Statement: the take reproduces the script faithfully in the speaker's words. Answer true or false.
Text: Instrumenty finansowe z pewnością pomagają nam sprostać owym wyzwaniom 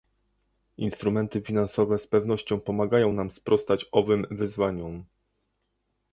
true